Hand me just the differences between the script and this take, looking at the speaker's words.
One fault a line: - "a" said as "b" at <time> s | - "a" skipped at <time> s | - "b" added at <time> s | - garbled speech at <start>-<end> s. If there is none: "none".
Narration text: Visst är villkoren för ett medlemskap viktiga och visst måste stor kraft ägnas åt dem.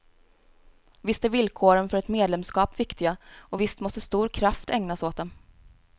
none